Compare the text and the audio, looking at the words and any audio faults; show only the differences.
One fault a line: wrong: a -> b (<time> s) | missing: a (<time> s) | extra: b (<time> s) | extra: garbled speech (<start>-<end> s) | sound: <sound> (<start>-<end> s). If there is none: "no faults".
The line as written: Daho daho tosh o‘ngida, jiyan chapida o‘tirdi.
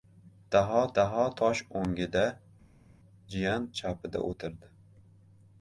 no faults